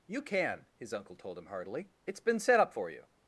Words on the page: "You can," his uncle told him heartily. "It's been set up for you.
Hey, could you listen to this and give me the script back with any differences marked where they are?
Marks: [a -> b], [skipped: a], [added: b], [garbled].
"You can," his uncle told him heartily. "It's been set up for you.